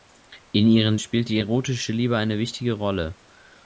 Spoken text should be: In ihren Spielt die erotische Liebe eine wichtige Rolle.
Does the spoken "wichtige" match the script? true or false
true